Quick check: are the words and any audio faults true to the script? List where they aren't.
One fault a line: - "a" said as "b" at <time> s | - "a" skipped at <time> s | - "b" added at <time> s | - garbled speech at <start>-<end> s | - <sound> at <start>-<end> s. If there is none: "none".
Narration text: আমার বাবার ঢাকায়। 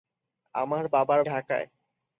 none